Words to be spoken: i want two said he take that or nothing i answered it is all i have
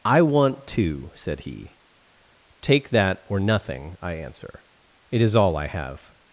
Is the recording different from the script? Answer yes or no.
yes